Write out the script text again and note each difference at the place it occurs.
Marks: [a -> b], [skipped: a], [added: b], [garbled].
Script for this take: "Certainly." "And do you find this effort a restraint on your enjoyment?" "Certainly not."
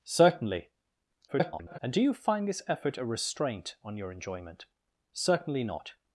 "Certainly." [garbled] "And do you find this effort a restraint on your enjoyment?" "Certainly not."